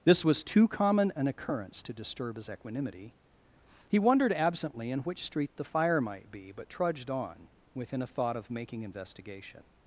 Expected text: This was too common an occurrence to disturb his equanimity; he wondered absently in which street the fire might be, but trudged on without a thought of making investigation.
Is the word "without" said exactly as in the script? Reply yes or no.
no